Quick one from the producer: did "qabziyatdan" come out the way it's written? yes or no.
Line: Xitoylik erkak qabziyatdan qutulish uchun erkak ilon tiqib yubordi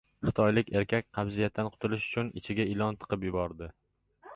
yes